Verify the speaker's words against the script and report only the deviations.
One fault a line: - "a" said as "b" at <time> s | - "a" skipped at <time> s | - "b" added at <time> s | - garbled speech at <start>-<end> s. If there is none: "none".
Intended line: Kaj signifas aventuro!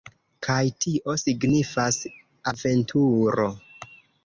- "tio" added at 0.8 s